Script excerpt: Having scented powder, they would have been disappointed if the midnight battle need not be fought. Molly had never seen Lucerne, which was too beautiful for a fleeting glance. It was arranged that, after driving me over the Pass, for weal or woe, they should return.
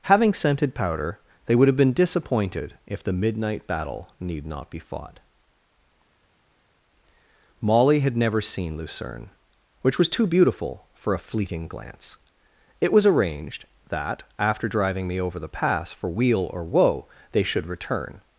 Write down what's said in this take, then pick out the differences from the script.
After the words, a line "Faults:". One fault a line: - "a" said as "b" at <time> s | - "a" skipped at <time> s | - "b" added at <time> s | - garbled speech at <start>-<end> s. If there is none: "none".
Having scented powder, they would have been disappointed if the midnight battle need not be fought. Molly had never seen Lucerne, which was too beautiful for a fleeting glance. It was arranged that, after driving me over the Pass, for weal or woe, they should return.
Faults:
none